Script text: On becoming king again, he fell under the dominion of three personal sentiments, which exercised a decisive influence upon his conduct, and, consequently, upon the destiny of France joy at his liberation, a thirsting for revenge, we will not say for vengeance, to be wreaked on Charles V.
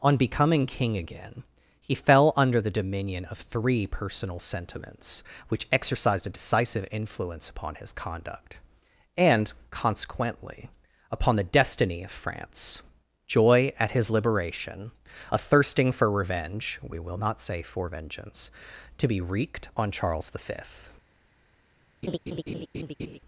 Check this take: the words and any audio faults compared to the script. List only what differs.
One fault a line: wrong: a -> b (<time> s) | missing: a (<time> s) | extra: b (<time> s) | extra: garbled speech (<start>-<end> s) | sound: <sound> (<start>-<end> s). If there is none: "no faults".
sound: laugh (22.0-23.2 s)